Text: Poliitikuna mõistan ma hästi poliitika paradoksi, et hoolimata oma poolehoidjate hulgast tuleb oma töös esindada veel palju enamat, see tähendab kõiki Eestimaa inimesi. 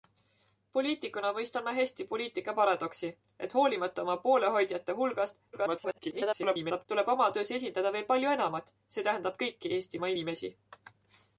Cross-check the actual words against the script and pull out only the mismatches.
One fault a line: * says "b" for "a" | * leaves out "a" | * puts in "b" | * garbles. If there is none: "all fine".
* garbles